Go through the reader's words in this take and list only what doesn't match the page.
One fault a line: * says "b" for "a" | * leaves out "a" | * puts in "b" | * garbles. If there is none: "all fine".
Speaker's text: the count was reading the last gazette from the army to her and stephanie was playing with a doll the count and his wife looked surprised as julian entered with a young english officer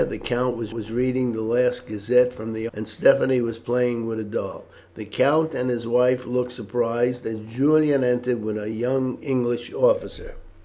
* puts in "was"
* leaves out "army to her"